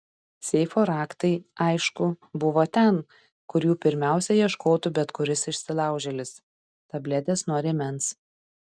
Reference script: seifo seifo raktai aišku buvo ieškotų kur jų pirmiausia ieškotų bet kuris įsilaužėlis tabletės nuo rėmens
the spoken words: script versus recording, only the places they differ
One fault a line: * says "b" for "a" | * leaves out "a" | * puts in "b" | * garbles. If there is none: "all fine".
* leaves out "seifo"
* says "ten" for "ieškotų"